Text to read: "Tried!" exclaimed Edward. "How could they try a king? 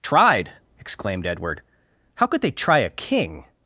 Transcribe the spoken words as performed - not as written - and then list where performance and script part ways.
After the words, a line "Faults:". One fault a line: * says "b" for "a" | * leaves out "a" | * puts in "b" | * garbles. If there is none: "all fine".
"Tried!" exclaimed Edward. "How could they try a king?
Faults:
all fine